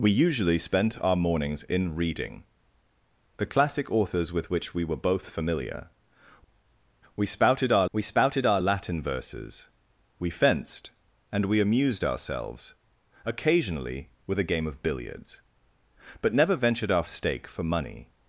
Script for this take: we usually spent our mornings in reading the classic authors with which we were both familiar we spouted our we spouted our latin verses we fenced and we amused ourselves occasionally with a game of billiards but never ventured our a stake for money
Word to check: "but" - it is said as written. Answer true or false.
true